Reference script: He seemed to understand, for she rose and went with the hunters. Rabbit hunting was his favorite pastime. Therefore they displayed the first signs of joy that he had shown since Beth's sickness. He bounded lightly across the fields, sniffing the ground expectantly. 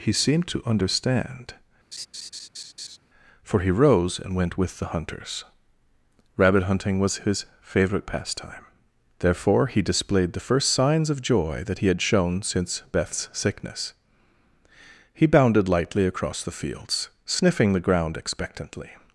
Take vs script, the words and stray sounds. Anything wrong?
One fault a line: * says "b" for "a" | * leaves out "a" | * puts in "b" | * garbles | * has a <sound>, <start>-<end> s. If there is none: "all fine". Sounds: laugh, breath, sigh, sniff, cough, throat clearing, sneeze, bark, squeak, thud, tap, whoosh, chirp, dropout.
* has a laugh, 1.9-3.0 s
* says "he" for "she"
* says "he" for "they"